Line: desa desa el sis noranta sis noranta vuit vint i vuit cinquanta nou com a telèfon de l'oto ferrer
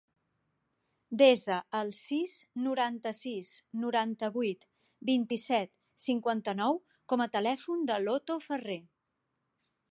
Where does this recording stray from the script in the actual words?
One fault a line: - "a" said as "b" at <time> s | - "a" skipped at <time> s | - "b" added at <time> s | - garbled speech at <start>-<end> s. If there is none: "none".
- "desa" skipped at 1.6 s
- "vuit" said as "set" at 5.5 s